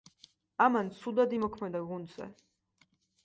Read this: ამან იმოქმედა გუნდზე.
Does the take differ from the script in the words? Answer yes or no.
yes